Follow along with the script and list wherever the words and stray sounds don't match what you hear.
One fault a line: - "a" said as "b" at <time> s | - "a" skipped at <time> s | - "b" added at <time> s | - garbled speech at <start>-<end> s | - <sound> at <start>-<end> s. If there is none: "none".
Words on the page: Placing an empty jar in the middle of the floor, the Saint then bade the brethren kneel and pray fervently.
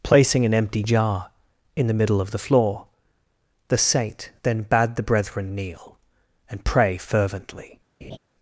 - laugh at 8.0-8.2 s